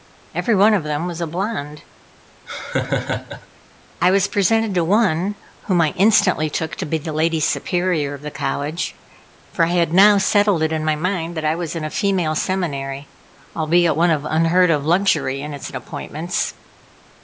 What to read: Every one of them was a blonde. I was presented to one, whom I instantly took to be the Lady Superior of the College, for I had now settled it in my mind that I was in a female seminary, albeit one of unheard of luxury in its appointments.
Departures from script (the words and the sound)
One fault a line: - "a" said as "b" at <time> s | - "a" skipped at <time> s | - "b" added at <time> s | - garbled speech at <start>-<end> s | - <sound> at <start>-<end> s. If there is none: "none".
- laugh at 2.5-3.5 s